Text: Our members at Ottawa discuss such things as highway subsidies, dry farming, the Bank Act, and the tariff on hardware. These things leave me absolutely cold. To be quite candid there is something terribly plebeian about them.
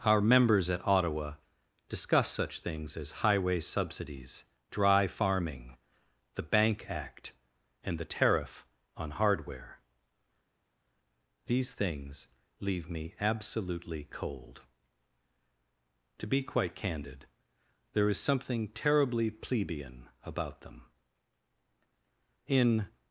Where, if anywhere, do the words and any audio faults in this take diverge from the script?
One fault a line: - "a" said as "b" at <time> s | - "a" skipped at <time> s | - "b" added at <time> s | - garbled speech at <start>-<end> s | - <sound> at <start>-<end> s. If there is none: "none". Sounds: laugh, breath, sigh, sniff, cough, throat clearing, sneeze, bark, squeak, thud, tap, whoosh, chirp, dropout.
- "In" added at 22.5 s